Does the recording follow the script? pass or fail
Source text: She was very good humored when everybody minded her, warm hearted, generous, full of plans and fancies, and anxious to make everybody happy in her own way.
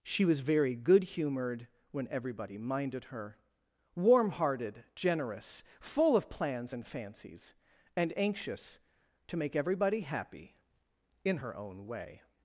pass